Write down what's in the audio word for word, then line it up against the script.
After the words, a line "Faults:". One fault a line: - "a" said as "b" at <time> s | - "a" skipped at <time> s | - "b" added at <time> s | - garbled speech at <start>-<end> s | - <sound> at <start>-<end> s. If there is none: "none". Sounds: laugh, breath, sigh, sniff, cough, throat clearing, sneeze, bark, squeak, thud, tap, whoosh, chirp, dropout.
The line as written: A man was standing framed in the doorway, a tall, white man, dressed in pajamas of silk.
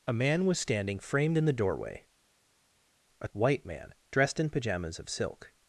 A man was standing framed in the doorway, a white man, dressed in pajamas of silk.
Faults:
- "tall" skipped at 3.3 s